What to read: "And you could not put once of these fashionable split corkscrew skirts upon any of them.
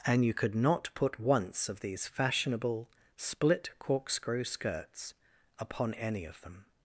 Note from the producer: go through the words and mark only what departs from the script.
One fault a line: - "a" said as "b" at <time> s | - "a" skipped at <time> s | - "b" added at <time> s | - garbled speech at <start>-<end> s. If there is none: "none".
none